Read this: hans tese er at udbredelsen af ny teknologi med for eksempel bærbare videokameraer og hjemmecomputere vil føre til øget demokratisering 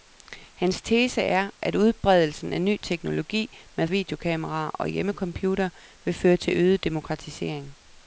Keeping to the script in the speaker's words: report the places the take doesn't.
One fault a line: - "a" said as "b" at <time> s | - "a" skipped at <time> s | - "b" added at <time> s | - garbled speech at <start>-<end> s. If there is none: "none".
- "for eksempel bærbare" skipped at 3.9 s